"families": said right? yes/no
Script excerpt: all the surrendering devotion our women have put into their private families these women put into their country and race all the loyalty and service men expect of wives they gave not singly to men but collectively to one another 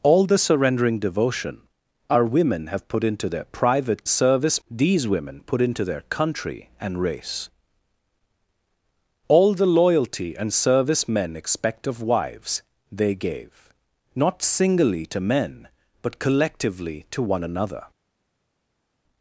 no